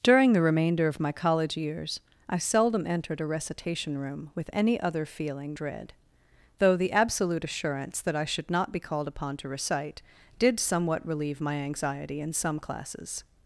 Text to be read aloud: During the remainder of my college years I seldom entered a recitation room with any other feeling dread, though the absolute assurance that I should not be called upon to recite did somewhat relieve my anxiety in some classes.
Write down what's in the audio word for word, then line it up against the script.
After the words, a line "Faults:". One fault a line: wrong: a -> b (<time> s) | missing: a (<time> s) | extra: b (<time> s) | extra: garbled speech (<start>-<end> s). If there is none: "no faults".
During the remainder of my college years I seldom entered a recitation room with any other feeling dread, though the absolute assurance that I should not be called upon to recite did somewhat relieve my anxiety in some classes.
Faults:
no faults